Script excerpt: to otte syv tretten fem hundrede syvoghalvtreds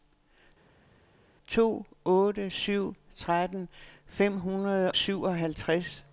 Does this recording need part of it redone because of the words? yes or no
no